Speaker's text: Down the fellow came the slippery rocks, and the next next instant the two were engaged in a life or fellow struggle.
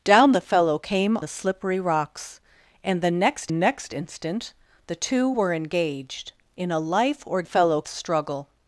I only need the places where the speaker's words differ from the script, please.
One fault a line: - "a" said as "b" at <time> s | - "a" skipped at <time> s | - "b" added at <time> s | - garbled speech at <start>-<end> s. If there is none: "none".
none